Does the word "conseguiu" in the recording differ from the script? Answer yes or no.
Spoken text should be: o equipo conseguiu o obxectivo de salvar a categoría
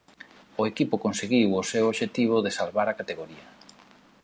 no